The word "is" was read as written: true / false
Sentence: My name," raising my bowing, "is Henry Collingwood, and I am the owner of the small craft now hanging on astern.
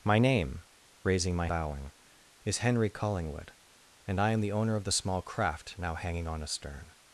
true